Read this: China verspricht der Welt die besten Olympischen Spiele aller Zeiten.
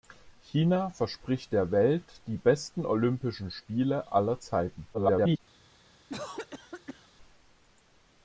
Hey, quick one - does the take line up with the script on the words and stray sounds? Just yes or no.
no